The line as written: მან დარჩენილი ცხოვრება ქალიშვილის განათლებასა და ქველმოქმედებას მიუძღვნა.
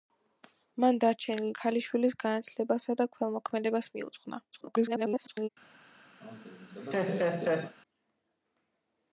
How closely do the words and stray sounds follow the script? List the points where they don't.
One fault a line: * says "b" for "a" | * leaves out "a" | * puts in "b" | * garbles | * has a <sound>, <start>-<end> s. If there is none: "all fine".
* leaves out "ცხოვრება"
* garbles
* has a laugh, 6.2-7.8 s